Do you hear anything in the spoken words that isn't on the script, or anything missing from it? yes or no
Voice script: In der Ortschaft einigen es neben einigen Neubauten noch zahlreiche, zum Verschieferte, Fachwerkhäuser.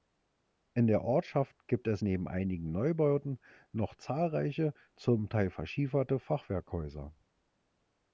yes